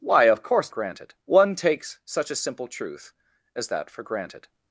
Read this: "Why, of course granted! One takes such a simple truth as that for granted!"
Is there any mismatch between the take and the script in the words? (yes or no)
no